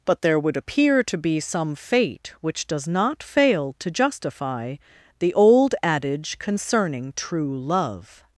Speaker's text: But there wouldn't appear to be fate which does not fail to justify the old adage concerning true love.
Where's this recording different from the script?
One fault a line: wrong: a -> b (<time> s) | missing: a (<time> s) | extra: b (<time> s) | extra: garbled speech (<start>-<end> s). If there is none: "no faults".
wrong: wouldn't -> would (0.4 s)
extra: some (1.4 s)